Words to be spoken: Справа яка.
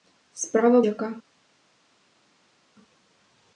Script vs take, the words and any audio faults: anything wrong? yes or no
no